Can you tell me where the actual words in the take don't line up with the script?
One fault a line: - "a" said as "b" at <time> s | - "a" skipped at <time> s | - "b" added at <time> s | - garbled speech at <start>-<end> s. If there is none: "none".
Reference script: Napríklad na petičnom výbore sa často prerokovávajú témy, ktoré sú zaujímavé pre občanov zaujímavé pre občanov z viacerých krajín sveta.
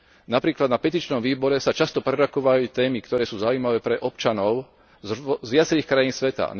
- "zaujímavé pre občanov" skipped at 4.6 s